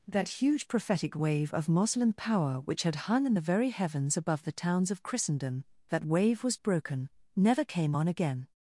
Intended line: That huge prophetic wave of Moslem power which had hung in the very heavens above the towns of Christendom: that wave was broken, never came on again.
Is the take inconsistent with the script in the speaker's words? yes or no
no